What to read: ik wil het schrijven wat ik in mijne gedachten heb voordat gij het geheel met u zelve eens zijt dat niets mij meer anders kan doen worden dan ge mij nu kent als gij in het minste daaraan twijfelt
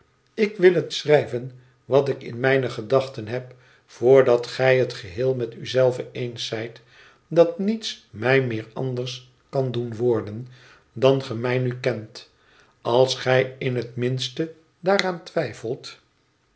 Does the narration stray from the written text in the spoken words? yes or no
no